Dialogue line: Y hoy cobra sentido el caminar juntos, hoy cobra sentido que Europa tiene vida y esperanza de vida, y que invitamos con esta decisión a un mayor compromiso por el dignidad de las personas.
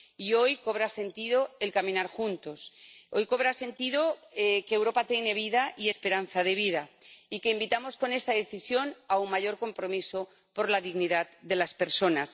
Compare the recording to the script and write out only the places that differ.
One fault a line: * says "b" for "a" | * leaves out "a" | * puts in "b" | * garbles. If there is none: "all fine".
* says "la" for "el"